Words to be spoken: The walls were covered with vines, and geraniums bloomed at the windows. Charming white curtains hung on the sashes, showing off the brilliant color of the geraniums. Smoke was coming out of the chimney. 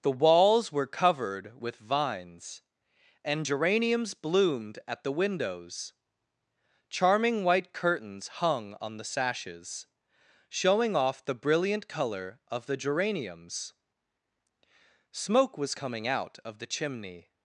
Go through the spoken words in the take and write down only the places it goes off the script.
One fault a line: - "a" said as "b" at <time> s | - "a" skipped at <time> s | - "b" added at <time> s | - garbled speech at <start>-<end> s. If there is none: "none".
none